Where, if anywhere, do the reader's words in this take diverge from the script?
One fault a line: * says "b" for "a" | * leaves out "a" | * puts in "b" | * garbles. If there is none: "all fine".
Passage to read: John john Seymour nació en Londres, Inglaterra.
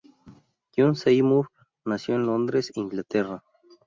* leaves out "john"